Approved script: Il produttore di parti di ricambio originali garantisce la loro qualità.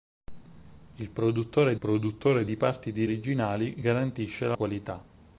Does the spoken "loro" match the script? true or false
false